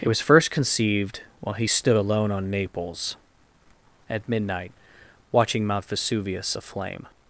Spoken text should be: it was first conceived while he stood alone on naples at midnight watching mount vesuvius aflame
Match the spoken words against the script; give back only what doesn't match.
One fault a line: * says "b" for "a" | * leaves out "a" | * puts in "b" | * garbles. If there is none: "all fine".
all fine